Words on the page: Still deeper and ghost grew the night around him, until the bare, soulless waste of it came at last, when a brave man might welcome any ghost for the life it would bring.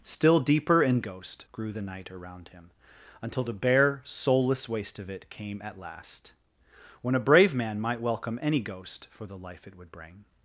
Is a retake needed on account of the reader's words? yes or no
no